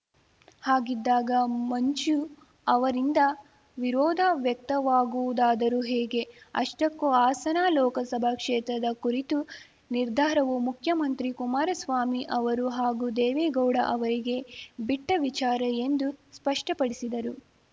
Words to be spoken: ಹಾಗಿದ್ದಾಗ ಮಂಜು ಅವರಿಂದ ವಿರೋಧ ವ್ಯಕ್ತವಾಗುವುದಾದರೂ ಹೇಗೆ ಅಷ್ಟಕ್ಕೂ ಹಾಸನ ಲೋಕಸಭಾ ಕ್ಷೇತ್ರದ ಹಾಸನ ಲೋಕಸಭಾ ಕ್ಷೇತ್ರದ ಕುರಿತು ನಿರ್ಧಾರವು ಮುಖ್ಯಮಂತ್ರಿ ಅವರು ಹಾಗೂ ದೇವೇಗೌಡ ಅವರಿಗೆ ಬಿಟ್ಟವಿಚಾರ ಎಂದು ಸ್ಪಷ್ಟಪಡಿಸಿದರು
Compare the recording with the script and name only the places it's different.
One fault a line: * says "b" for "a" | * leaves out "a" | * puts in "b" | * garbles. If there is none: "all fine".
* leaves out "ಹಾಸನ ಲೋಕಸಭಾ ಕ್ಷೇತ್ರದ"
* puts in "ಕುಮಾರಸ್ವಾಮಿ"